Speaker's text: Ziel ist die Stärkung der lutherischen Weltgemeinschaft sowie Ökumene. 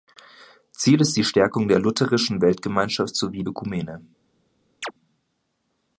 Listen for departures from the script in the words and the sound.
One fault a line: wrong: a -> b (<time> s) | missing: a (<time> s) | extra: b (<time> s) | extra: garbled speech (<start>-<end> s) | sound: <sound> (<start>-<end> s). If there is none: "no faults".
sound: chirp (4.8-4.9 s)